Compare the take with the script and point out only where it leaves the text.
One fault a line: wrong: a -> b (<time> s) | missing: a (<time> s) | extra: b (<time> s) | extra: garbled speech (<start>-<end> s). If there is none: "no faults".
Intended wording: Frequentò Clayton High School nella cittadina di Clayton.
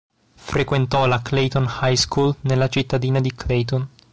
extra: la (1.1 s)